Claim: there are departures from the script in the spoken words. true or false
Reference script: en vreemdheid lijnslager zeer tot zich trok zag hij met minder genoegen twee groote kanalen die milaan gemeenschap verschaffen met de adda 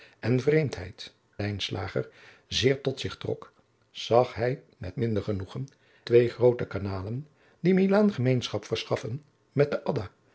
false